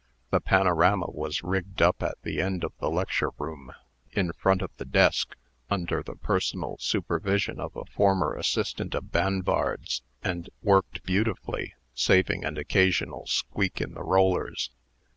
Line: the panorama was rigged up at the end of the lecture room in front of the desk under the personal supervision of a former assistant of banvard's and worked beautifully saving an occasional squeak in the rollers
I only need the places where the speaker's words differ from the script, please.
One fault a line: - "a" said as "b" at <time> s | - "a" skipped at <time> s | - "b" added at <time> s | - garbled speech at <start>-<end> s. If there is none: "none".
none